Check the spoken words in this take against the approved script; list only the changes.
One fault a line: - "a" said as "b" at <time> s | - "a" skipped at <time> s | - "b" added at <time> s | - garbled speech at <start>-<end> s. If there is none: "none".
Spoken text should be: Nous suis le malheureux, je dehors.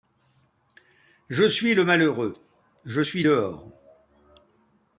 - "Nous" said as "Je" at 1.3 s
- "suis" added at 3.0 s